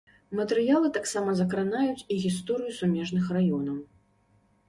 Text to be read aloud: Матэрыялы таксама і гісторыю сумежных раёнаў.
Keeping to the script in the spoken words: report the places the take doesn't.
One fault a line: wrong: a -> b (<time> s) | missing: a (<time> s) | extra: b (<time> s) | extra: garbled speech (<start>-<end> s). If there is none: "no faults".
extra: закранаюць (1.4 s)